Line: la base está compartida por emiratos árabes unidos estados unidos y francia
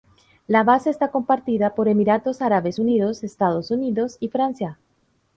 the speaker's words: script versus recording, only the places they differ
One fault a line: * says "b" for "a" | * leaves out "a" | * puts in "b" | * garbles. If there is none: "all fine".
all fine